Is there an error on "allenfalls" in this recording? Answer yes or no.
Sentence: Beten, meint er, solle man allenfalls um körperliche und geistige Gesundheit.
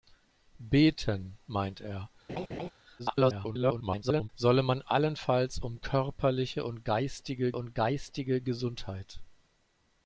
no